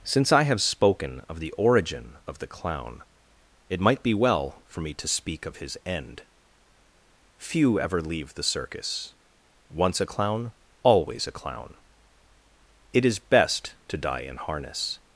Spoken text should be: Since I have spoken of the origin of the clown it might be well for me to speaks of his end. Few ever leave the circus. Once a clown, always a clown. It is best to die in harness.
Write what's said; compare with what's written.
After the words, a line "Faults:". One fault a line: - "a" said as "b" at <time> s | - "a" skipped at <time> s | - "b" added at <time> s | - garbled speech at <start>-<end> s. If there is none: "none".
Since I have spoken of the origin of the clown it might be well for me to speak of his end. Few ever leave the circus. Once a clown, always a clown. It is best to die in harness.
Faults:
- "speaks" said as "speak" at 5.1 s